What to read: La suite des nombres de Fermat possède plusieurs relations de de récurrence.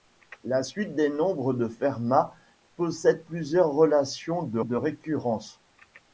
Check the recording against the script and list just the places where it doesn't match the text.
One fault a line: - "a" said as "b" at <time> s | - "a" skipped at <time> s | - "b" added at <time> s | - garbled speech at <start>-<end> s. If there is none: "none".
none